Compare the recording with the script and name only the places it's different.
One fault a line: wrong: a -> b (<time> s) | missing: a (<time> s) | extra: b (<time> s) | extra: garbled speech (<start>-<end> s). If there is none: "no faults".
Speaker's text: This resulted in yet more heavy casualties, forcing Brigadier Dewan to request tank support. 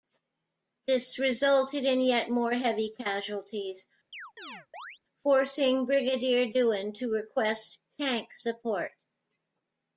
no faults